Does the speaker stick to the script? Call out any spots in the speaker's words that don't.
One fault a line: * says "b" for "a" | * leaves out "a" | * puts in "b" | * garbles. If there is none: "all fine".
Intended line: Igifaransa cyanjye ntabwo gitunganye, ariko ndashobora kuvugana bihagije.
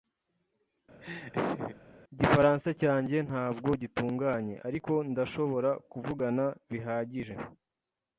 all fine